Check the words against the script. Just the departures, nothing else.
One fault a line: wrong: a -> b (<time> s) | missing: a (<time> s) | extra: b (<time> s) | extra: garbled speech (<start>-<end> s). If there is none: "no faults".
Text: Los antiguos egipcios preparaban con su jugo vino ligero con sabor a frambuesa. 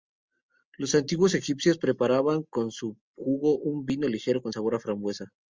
extra: un (3.6 s)